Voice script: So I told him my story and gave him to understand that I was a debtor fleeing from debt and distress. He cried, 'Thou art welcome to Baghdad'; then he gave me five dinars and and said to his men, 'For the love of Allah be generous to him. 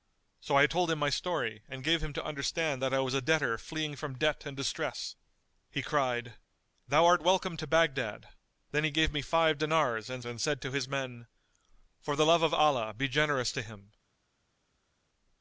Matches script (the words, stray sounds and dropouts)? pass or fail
pass